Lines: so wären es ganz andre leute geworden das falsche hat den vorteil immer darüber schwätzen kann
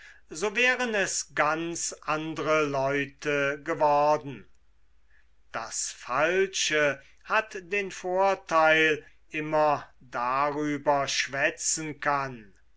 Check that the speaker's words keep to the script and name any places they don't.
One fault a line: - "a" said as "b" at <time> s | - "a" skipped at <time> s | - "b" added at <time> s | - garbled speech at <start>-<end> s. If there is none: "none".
none